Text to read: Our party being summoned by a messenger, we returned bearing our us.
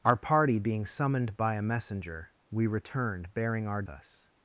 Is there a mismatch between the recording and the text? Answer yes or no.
no